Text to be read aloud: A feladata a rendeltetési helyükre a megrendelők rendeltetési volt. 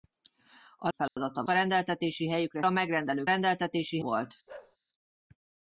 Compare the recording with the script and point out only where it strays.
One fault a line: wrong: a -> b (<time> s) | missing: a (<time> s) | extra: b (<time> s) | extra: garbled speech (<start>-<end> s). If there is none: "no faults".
no faults